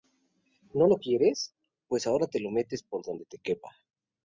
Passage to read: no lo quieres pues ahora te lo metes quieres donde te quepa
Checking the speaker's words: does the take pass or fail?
fail